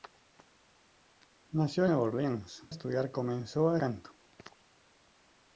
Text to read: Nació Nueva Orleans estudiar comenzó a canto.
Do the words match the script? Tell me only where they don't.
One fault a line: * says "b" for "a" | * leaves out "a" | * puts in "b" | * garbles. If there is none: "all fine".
all fine